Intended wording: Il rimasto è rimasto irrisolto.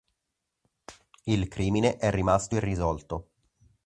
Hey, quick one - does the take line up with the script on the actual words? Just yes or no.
no